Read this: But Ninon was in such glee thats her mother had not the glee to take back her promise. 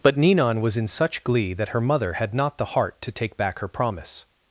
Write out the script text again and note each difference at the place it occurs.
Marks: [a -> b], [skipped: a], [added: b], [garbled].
But Ninon was in such glee [thats -> that] her mother had not the [glee -> heart] to take back her promise.